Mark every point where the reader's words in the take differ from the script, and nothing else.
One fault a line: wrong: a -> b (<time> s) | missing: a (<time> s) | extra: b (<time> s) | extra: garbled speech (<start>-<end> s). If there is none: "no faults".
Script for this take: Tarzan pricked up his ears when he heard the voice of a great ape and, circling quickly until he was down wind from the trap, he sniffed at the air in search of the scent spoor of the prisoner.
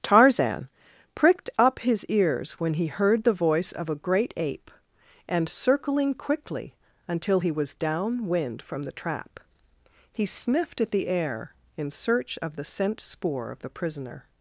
no faults